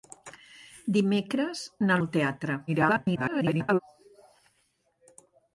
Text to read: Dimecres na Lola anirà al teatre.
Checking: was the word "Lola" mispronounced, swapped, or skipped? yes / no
yes